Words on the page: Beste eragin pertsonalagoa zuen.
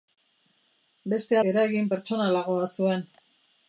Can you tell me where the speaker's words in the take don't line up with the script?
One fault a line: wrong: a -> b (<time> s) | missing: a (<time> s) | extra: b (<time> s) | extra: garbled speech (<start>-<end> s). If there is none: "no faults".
no faults